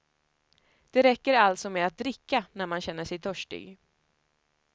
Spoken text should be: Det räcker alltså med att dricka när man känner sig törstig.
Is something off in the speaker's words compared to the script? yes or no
no